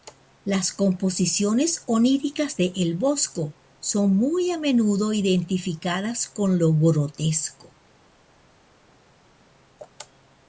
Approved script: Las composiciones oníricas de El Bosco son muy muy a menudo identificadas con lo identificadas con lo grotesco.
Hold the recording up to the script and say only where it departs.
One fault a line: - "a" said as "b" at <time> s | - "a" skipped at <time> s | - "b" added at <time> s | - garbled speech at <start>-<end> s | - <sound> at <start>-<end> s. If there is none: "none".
- "muy" skipped at 4.5 s
- "identificadas con lo" skipped at 6.7 s